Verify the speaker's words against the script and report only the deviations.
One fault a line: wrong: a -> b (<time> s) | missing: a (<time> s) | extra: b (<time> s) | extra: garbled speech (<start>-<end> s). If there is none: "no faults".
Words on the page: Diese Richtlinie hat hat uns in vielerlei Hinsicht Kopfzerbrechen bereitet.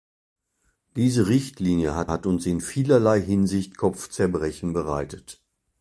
no faults